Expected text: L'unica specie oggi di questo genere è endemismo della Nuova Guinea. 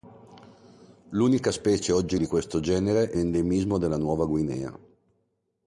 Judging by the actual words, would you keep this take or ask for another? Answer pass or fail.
pass